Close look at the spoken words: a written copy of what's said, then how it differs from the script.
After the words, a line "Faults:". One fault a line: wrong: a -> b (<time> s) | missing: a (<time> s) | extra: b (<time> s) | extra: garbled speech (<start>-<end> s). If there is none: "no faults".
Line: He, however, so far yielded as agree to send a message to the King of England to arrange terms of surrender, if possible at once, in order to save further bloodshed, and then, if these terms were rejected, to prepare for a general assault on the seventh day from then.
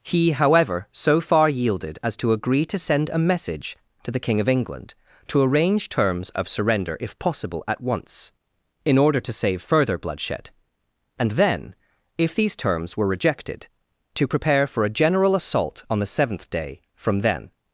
He, however, so far yielded as to agree to send a message to the King of England to arrange terms of surrender, if possible at once, in order to save further bloodshed, and then, if these terms were rejected, to prepare for a general assault on the seventh day from then.
Faults:
extra: to (2.2 s)